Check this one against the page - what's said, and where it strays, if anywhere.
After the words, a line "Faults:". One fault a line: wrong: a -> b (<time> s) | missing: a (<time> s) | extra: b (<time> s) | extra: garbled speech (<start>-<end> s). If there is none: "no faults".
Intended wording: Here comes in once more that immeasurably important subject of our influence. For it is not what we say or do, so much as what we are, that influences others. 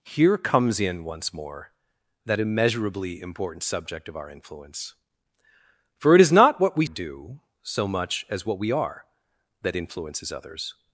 Here comes in once more that immeasurably important subject of our influence. For it is not what we do, so much as what we are, that influences others.
Faults:
missing: say or (6.8 s)